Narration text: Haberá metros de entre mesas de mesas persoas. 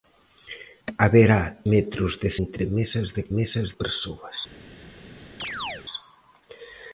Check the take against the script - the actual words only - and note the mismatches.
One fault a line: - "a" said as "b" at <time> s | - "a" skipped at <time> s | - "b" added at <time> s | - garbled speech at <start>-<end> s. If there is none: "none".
none